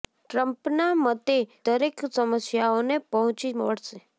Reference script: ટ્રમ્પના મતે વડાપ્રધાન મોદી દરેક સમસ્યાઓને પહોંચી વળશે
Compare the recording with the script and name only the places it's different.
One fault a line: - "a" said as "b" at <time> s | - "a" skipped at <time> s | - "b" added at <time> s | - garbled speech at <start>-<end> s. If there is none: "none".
- "વડાપ્રધાન મોદી" skipped at 1.4 s